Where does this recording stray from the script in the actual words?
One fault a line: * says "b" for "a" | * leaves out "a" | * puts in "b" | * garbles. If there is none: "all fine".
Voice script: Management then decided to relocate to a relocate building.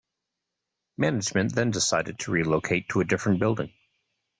* says "different" for "relocate"